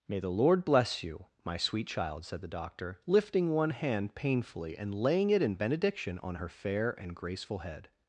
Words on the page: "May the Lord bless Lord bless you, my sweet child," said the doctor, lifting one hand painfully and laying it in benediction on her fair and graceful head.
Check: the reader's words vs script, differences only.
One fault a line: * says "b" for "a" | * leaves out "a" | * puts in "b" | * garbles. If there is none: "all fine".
* leaves out "Lord bless"